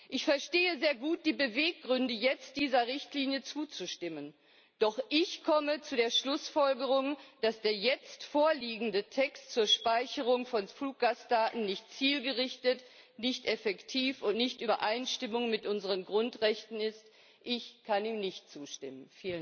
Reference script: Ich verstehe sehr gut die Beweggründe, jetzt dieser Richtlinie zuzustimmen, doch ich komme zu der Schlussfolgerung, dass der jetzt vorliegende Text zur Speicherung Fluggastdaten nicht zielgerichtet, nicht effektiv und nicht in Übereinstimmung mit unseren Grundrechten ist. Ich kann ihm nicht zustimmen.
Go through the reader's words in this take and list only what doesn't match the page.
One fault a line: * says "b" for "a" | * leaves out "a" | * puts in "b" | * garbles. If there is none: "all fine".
* puts in "von"